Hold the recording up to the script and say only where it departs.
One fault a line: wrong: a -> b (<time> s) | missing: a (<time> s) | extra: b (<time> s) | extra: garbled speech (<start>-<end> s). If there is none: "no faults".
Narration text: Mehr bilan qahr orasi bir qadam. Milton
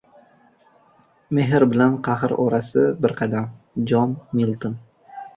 extra: Jon (3.9 s)